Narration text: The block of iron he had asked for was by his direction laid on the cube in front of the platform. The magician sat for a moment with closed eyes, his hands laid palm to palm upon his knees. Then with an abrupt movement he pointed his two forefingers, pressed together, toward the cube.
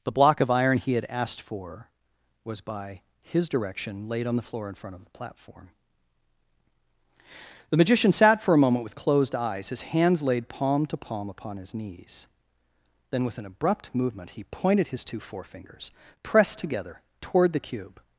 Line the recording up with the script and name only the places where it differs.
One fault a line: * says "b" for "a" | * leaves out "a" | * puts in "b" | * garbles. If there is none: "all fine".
* says "floor" for "cube"